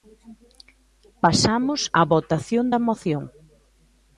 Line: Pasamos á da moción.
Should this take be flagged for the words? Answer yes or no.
yes